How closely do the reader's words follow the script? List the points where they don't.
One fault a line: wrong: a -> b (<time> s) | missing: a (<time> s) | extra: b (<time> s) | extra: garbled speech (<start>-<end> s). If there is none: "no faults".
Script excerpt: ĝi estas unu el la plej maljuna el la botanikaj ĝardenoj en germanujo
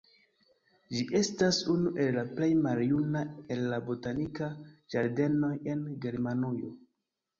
no faults